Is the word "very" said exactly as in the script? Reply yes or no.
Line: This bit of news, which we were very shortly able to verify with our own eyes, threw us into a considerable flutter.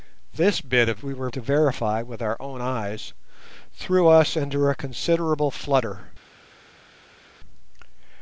no